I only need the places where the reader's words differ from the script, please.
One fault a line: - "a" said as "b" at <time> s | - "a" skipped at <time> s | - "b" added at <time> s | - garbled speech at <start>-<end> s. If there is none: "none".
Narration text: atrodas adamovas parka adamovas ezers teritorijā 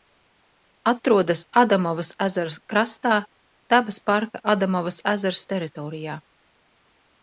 - "ezera krastā dabas" added at 2.3 s